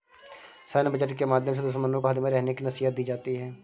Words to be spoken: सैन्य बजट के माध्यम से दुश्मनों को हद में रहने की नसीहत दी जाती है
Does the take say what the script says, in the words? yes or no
no